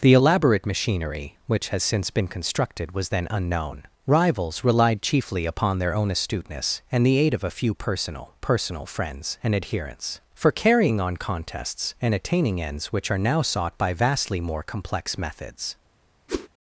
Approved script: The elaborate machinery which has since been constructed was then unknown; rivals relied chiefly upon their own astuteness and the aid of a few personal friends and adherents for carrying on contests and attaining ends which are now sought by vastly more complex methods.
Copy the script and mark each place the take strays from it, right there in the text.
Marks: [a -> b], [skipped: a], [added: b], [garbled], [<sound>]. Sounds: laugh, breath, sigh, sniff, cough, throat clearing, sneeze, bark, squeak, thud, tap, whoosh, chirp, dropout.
The elaborate machinery which has since been constructed was then unknown; rivals relied chiefly upon their own astuteness and the aid of a few personal [added: personal] friends and adherents for carrying on contests and attaining ends which are now sought by vastly more complex methods. [whoosh]